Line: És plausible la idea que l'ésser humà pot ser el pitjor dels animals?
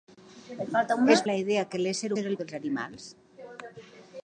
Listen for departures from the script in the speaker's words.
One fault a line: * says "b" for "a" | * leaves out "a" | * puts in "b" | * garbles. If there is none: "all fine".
* leaves out "plausible"
* leaves out "humà pot"
* leaves out "pitjor"